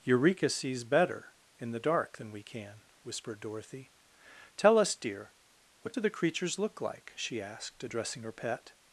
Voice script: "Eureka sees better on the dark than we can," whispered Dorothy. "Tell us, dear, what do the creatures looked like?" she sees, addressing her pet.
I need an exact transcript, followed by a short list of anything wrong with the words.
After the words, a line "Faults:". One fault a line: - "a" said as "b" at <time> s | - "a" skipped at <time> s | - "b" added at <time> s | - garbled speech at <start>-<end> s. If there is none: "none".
"Eureka sees better in the dark than we can," whispered Dorothy. "Tell us, dear, what do the creatures look like?" she asked, addressing her pet.
Faults:
- "on" said as "in" at 1.6 s
- "looked" said as "look" at 6.6 s
- "sees" said as "asked" at 7.4 s